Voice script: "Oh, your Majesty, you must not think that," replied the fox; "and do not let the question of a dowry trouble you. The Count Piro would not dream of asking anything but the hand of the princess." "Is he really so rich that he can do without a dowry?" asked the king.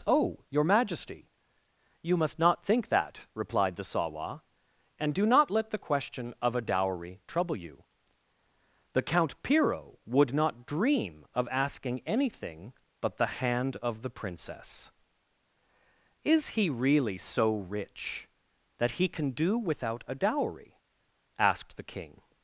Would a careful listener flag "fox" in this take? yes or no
yes